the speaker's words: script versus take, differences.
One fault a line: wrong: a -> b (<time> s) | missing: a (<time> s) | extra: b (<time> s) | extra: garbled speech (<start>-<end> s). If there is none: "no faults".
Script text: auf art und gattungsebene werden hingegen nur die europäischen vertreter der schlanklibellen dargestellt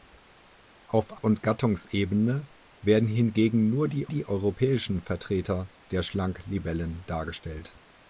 missing: art (1.2 s)
extra: die (4.1 s)